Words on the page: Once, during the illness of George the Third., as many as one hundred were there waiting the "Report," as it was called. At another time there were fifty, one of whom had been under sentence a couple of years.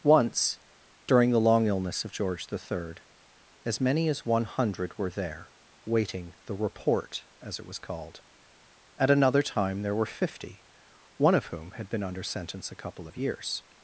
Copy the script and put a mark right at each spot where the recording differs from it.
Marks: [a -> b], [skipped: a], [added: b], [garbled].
Once, during the [added: long] illness of George the Third., as many as one hundred were there waiting the "Report," as it was called. At another time there were fifty, one of whom had been under sentence a couple of years.